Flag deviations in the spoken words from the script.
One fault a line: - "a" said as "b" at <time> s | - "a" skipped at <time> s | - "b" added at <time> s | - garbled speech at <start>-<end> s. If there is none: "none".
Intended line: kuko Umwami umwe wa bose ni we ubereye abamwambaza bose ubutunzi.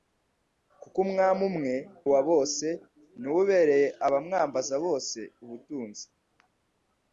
none